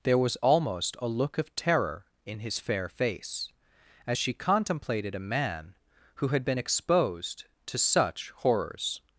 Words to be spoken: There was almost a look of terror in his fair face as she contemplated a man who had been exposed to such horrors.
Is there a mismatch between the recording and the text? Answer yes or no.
no